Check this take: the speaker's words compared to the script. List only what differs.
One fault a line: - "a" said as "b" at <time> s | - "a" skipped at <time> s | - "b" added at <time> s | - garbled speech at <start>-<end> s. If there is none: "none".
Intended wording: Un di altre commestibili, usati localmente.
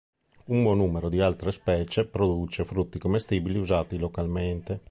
- "buon numero" added at 0.6 s
- "specie produce frutti" added at 1.5 s